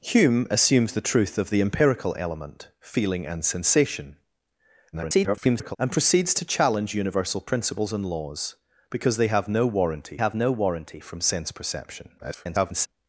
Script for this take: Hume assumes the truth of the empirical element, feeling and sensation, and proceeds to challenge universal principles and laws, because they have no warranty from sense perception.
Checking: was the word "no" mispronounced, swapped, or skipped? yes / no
no